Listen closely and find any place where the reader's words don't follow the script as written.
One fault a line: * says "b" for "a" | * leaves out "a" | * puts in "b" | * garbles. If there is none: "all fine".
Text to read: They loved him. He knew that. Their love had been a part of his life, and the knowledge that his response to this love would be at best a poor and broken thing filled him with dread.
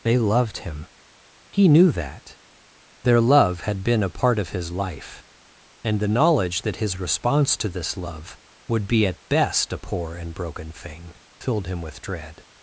all fine